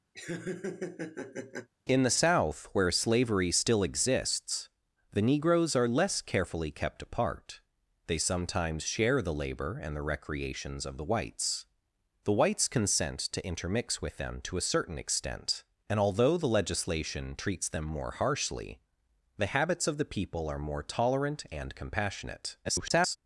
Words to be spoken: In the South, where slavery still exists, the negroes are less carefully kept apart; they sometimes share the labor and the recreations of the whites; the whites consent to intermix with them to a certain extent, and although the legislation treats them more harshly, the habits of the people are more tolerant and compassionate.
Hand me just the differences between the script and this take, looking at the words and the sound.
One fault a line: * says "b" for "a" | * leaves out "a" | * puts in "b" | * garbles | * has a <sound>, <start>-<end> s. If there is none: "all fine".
* has a laugh, 0.1-1.7 s
* garbles